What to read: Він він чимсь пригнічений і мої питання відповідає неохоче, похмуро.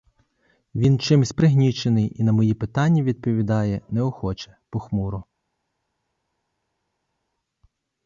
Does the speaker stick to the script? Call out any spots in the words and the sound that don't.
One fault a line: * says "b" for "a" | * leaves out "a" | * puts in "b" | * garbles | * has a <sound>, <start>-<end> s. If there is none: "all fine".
* leaves out "він"
* puts in "на"